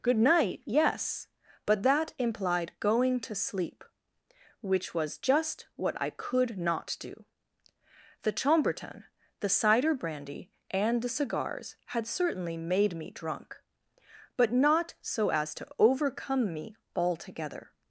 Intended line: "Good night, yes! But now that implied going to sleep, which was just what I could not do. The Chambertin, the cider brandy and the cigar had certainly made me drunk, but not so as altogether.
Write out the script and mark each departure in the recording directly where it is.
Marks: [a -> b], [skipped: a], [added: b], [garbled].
"Good night, yes! But [skipped: now] that implied going to sleep, which was just what I could not do. The Chambertin, the cider brandy and the [cigar -> cigars] had certainly made me drunk, but not so as [added: to overcome me] altogether.